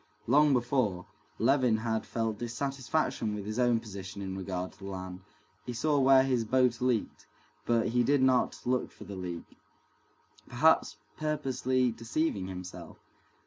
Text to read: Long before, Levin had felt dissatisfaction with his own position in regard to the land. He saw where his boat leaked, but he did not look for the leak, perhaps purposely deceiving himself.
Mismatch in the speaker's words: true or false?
false